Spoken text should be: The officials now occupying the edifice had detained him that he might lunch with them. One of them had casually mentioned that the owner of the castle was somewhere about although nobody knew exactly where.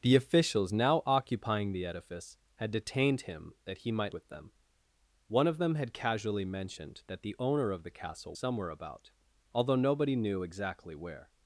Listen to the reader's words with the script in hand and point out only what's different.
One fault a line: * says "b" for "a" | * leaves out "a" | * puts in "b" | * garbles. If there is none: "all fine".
* leaves out "lunch"
* leaves out "was"